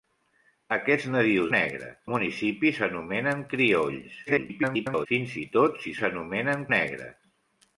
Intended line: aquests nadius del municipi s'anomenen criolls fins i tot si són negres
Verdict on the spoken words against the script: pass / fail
fail